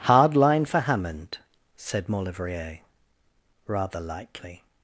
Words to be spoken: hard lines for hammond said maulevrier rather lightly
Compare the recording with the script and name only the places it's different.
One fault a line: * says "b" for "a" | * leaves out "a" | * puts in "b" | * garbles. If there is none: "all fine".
* says "line" for "lines"